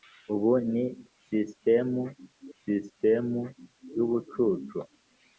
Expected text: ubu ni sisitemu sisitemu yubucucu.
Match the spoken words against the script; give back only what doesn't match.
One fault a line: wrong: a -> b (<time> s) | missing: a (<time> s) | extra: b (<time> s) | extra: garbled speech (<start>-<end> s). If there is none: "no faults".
no faults